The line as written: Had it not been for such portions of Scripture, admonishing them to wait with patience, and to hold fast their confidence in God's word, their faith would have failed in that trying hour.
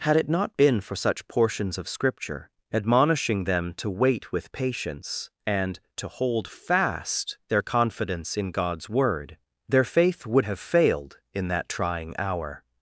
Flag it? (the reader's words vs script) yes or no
no